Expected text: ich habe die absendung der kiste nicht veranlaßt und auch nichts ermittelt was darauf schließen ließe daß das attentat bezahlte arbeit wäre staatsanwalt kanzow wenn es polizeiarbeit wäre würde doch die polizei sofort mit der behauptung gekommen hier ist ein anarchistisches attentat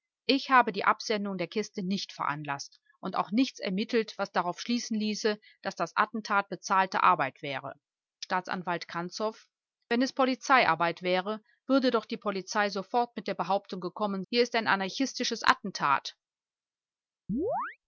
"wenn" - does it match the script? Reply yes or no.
yes